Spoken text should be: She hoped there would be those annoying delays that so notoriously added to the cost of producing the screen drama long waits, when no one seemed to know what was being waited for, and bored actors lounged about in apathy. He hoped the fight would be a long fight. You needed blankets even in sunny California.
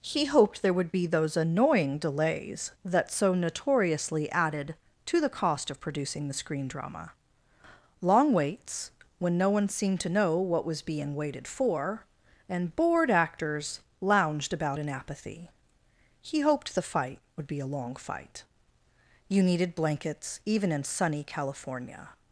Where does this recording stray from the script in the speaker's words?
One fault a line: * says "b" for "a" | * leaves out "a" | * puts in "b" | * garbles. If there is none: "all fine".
* says "He" for "She"